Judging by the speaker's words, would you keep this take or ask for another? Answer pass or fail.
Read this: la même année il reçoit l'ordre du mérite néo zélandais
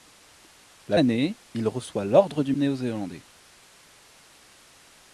fail